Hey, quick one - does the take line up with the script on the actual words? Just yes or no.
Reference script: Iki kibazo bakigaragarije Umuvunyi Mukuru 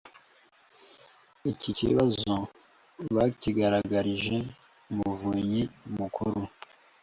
yes